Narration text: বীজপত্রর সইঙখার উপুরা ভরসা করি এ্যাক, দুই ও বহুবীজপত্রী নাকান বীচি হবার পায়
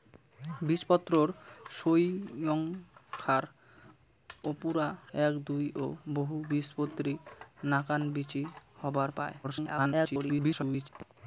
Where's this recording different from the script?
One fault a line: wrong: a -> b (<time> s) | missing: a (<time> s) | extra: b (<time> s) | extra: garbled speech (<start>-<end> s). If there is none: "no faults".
missing: ভরসা করি (4.9 s)
extra: garbled speech (9.4-10.9 s)